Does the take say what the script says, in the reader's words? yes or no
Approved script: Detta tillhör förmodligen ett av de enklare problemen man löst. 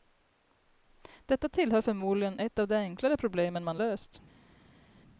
yes